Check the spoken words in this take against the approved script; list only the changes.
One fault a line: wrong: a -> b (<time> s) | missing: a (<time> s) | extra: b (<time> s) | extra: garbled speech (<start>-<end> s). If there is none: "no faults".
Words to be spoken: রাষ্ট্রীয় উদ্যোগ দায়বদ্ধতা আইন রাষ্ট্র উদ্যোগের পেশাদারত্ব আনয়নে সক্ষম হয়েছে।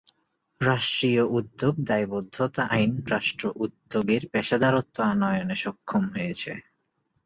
no faults